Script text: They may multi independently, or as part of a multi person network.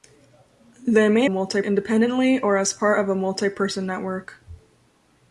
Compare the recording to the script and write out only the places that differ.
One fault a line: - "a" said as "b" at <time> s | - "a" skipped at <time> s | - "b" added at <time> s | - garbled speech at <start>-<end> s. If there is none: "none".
none